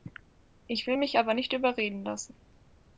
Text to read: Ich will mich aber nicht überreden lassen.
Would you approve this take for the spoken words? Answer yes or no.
yes